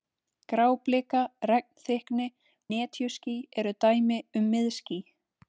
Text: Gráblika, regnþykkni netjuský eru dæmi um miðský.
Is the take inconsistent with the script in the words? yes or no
no